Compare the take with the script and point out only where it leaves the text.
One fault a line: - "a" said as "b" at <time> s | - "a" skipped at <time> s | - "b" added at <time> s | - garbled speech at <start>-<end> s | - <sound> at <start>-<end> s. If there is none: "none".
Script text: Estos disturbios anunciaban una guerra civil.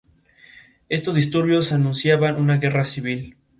none